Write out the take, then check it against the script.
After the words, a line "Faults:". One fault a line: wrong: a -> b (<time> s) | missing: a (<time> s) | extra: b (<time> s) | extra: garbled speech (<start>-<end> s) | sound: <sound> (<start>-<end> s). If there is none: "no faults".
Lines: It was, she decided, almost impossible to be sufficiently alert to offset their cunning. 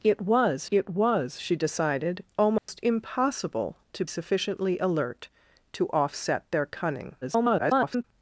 It was it was, she decided, almost impossible to sufficiently alert to offset their cunning. [garbled]
Faults:
extra: it was (0.7 s)
sound: dropout (2.6-2.7 s)
missing: be (4.1 s)
extra: garbled speech (7.2-8.0 s)